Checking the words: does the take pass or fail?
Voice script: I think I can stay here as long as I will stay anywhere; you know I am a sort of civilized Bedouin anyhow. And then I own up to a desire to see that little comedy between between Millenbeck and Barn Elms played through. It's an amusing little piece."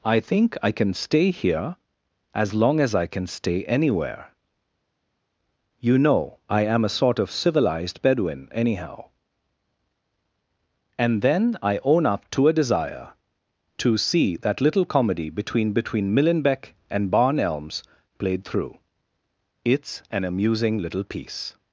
fail